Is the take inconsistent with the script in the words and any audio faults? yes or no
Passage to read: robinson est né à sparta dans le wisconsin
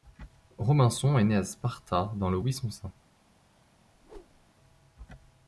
yes